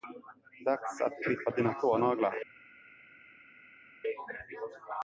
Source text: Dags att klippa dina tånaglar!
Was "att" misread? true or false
false